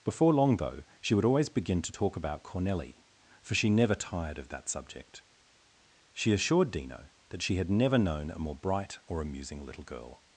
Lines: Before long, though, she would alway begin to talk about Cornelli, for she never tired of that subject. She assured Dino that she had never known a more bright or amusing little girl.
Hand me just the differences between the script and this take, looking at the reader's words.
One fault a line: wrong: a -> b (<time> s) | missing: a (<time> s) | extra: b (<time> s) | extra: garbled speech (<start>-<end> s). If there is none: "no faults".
wrong: alway -> always (1.2 s)